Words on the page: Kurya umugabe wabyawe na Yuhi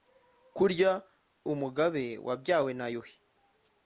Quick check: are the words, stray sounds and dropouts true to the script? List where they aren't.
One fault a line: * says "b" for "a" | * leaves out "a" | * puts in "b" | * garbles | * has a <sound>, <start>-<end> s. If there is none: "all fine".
all fine